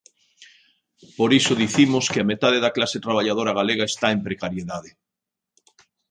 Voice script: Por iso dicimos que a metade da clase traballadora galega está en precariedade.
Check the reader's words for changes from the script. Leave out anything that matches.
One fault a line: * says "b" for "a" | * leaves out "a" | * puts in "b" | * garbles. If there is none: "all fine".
all fine